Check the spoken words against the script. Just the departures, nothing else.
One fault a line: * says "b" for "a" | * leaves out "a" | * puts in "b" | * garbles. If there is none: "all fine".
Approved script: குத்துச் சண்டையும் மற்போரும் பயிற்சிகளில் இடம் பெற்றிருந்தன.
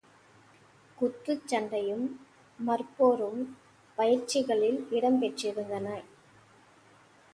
all fine